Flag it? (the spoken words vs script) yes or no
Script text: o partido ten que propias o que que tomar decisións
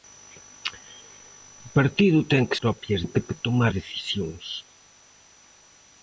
no